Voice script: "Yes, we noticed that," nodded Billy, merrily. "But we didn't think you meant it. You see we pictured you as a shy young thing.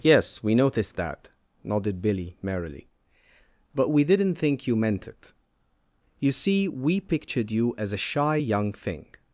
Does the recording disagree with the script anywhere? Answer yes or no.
no